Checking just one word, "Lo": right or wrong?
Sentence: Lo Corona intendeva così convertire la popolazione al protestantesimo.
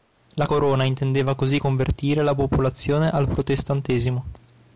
wrong